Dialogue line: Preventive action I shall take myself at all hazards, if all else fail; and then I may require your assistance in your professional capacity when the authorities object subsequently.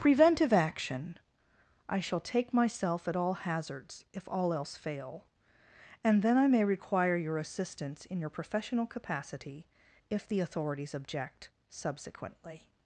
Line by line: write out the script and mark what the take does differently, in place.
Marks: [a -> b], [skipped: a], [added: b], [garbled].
Preventive action I shall take myself at all hazards, if all else fail; and then I may require your assistance in your professional capacity [when -> if] the authorities object subsequently.